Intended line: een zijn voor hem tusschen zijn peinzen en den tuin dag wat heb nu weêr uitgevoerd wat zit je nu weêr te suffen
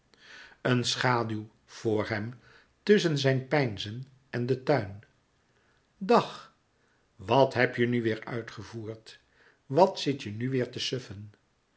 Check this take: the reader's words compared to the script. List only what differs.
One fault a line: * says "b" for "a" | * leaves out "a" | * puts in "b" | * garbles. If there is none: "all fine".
* says "schaduw" for "zijn"
* puts in "je"